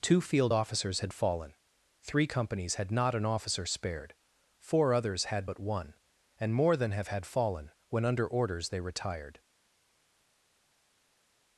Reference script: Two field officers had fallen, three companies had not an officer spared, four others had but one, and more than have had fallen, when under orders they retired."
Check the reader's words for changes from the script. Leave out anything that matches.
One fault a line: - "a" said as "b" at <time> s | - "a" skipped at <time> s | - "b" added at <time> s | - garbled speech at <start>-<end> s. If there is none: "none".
none